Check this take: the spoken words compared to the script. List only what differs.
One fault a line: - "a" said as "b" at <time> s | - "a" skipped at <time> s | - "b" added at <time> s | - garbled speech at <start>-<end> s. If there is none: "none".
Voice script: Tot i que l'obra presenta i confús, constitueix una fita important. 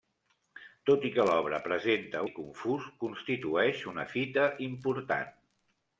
none